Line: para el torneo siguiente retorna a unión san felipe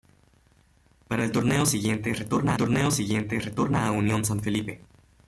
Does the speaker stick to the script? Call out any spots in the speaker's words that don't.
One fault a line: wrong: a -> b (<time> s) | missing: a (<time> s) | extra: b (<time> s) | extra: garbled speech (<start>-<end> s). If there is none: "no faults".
extra: torneo siguiente retorna (2.6 s)